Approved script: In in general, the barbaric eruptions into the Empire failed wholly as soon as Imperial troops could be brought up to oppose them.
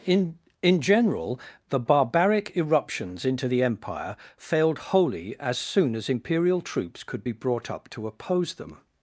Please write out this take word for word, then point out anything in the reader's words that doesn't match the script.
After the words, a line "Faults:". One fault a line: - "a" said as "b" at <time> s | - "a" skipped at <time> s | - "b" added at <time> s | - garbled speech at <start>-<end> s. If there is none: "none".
In in general, the barbaric eruptions into the Empire failed wholly as soon as Imperial troops could be brought up to oppose them.
Faults:
none